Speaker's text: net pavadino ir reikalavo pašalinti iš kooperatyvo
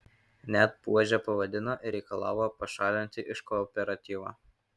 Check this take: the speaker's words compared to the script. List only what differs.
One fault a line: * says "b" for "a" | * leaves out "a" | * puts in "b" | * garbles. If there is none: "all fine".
* puts in "buože"